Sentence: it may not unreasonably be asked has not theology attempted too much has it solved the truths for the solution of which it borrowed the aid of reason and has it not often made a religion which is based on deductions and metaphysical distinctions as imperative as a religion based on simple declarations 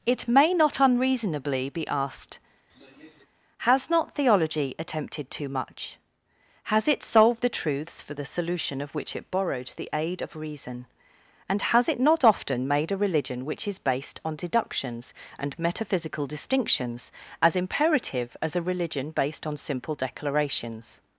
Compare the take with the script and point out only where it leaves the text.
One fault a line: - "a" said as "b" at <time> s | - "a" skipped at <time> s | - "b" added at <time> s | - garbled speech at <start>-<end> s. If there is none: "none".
none